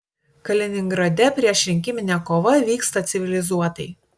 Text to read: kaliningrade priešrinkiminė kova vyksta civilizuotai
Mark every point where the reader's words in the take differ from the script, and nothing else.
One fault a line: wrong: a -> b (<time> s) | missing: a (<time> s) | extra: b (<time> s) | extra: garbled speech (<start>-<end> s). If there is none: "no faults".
no faults